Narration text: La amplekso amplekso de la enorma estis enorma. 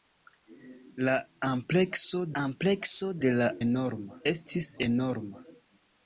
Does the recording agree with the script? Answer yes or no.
yes